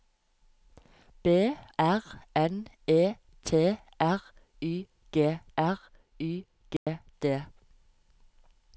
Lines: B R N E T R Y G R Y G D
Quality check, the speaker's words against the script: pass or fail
pass